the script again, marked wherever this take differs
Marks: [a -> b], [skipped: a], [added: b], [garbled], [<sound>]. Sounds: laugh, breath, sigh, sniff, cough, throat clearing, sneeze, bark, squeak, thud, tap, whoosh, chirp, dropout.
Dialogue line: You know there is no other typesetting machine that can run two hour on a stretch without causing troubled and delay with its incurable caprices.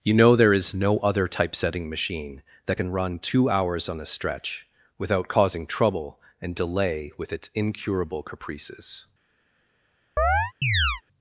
You know there is no other typesetting machine that can run two [hour -> hours] on a stretch without causing [troubled -> trouble] and delay with its incurable caprices. [chirp]